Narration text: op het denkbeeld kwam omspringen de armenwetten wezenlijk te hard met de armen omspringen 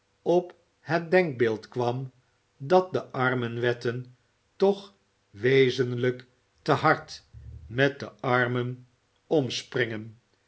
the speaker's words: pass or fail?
fail